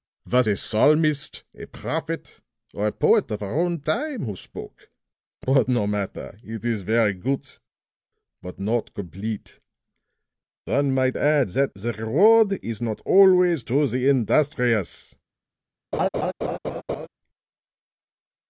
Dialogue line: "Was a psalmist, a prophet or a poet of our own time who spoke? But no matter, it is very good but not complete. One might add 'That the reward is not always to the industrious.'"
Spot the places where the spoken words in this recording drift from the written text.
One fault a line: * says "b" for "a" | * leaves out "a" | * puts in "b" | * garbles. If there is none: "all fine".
all fine